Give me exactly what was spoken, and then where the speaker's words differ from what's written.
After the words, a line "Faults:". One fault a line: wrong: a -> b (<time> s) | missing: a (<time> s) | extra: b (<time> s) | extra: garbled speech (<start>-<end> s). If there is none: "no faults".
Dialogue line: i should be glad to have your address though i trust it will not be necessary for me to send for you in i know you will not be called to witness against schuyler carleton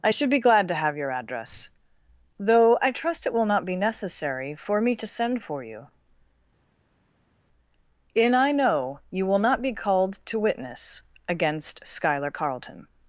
i should be glad to have your address though i trust it will not be necessary for me to send for you in i know you will not be called to witness against schuyler carleton
Faults:
no faults